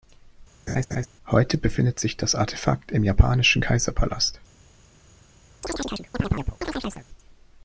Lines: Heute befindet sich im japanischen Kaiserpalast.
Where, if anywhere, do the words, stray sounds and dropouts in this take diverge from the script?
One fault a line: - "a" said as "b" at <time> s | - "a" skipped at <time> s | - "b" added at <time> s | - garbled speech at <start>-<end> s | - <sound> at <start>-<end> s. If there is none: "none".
- laugh at 0.7-1.1 s
- "das Artefakt" added at 2.2 s
- chirp at 5.6-7.1 s